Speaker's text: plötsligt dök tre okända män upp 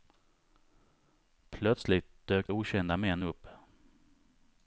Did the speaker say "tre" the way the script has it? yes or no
no